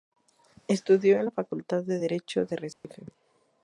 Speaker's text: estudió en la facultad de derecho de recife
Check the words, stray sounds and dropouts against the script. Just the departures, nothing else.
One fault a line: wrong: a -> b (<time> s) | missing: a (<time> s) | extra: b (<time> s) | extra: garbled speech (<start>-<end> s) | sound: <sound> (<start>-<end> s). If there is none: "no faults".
sound: dropout (2.7-2.8 s)